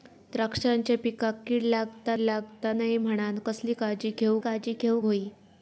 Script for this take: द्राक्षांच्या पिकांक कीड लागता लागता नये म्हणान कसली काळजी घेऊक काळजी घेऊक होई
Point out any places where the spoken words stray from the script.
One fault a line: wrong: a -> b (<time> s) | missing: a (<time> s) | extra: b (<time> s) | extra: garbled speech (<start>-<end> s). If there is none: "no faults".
no faults